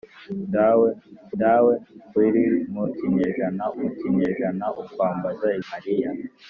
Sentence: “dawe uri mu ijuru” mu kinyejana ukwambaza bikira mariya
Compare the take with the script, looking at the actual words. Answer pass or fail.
fail